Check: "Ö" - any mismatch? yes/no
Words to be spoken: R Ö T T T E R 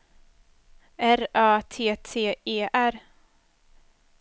no